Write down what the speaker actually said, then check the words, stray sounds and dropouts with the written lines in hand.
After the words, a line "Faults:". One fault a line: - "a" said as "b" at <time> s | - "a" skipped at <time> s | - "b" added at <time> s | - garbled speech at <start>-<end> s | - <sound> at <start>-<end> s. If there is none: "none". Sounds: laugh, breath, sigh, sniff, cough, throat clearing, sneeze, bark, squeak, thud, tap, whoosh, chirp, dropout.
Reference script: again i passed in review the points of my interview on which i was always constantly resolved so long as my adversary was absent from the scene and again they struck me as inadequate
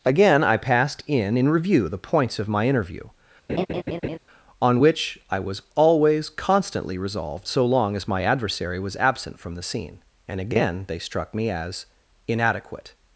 again i passed in in review the points of my interview on which i was always constantly resolved so long as my adversary was absent from the scene and again they struck me as inadequate
Faults:
- "in" added at 1.4 s
- laugh at 3.5-4.2 s